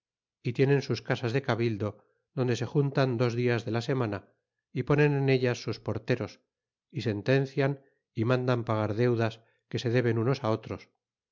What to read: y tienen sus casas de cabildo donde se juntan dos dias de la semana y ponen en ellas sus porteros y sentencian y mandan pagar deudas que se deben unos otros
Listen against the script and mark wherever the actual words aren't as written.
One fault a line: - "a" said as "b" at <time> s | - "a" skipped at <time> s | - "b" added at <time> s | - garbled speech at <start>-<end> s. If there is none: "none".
none